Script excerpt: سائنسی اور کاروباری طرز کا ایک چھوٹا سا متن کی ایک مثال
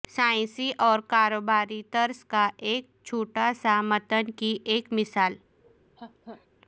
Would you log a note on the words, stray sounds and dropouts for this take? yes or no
yes